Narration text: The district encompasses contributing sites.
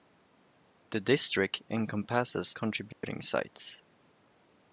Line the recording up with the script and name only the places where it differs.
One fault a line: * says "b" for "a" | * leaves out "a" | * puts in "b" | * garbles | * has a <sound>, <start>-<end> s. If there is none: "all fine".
* has a dropout, 2.9-3.0 s